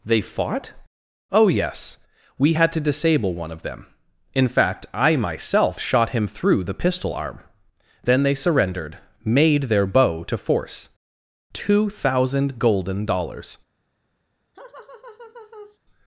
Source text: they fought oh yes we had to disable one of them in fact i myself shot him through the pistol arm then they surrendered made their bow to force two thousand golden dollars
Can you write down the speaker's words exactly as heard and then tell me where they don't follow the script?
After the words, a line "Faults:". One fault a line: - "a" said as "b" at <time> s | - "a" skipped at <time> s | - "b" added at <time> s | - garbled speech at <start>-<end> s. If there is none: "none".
they fought oh yes we had to disable one of them in fact i myself shot him through the pistol arm then they surrendered made their bow to force two thousand golden dollars
Faults:
none